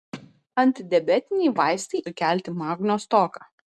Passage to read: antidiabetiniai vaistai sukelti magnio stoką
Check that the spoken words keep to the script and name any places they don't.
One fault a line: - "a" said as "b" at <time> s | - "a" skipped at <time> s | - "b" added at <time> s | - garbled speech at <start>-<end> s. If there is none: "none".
none